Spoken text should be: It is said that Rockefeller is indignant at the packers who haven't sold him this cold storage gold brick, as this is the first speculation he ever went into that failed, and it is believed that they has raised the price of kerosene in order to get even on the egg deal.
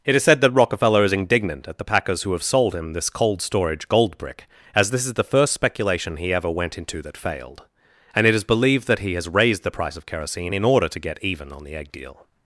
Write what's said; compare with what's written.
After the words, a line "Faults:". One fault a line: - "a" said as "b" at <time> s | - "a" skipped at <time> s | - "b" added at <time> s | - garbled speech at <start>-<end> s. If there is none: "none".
It is said that Rockefeller is indignant at the packers who have sold him this cold storage gold brick, as this is the first speculation he ever went into that failed, and it is believed that he has raised the price of kerosene in order to get even on the egg deal.
Faults:
- "haven't" said as "have" at 2.3 s
- "they" said as "he" at 9.0 s